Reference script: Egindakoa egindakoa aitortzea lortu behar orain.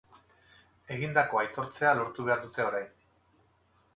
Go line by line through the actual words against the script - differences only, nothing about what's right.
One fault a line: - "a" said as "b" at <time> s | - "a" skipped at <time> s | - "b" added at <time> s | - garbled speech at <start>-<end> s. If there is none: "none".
- "egindakoa" skipped at 1.4 s
- "dute" added at 2.5 s